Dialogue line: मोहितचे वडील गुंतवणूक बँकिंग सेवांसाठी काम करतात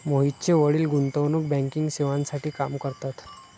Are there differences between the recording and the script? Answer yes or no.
no